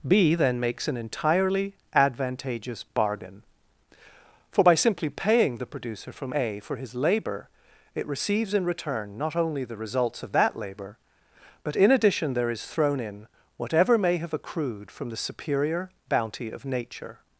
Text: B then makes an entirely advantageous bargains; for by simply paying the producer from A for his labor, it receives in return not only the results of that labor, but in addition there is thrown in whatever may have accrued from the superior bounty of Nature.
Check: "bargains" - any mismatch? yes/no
yes